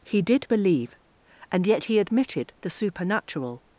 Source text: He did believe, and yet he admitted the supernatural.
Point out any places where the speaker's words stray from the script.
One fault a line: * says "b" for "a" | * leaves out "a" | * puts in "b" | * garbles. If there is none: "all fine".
all fine